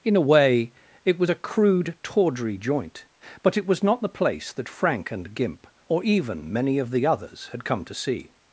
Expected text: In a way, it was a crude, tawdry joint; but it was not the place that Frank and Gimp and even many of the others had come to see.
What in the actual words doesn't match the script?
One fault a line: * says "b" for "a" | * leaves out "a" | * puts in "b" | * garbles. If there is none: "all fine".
* says "or" for "and"